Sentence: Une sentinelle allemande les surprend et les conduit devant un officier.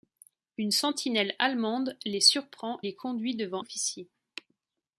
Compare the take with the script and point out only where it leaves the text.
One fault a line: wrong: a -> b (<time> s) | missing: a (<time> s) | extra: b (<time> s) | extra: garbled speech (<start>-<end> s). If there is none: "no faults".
missing: et (2.8 s)
missing: un (3.6 s)